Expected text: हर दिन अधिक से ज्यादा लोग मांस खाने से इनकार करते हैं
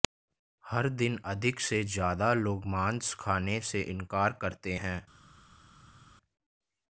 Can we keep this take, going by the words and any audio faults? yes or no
yes